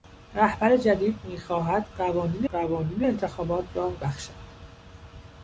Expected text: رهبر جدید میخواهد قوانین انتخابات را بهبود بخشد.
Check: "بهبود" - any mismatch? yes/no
yes